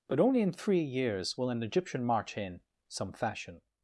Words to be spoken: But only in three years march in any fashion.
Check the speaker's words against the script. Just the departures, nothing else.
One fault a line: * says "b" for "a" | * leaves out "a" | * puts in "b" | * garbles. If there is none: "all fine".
* puts in "will an Egyptian"
* says "some" for "any"